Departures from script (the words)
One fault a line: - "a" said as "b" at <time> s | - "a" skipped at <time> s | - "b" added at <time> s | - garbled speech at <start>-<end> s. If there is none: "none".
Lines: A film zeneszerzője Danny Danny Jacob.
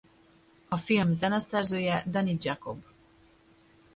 - "Danny" skipped at 2.4 s